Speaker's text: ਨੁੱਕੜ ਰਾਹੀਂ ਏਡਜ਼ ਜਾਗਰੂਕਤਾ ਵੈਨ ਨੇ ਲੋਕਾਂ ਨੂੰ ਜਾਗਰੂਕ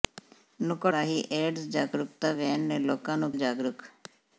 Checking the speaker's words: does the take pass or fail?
pass